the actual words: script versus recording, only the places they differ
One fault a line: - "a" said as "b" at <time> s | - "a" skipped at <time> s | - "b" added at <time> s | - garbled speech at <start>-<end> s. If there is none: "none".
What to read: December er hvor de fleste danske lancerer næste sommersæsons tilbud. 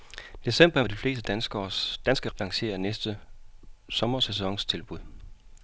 none